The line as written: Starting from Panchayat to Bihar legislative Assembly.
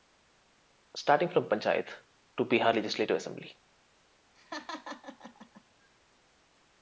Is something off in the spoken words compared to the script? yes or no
no